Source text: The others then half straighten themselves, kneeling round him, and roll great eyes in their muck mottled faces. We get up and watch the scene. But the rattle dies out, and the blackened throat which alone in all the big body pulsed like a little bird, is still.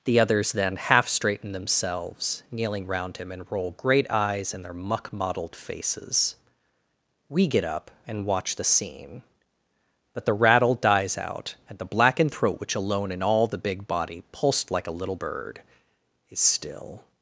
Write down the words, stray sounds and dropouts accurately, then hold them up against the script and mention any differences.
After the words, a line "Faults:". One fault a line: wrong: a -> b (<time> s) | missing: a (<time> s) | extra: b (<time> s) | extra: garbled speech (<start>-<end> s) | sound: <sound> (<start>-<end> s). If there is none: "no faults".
The others then half straighten themselves, kneeling round him, and roll great eyes in their muck mottled faces. We get up and watch the scene. But the rattle dies out, and the blackened throat which alone in all the big body pulsed like a little bird, is still.
Faults:
no faults